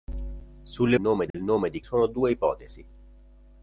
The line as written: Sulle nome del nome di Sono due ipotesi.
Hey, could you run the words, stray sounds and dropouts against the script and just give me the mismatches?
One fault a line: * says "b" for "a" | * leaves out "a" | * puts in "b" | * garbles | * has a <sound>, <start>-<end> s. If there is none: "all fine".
* has a dropout, 1.3-1.3 s